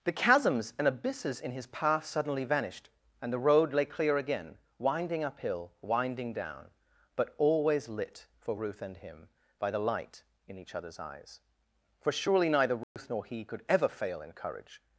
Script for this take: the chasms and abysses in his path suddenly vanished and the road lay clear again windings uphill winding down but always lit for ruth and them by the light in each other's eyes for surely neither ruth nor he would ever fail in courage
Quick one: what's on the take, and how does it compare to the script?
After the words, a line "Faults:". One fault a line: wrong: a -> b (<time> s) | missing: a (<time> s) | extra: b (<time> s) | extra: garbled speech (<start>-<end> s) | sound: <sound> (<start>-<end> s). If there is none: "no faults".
the chasms and abysses in his path suddenly vanished and the road lay clear again winding uphill winding down but always lit for ruth and him by the light in each other's eyes for surely neither ruth nor he could ever fail in courage
Faults:
wrong: windings -> winding (4.8 s)
wrong: them -> him (9.0 s)
sound: dropout (12.8-13.0 s)
wrong: would -> could (13.4 s)